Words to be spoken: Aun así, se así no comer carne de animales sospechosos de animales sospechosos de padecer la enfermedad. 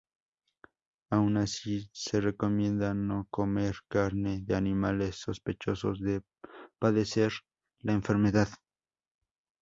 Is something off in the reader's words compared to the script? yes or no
yes